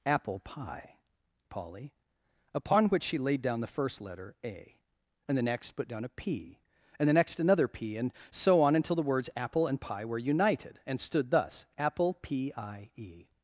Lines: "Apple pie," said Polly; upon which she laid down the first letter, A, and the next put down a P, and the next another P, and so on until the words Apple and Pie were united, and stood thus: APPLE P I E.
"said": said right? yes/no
no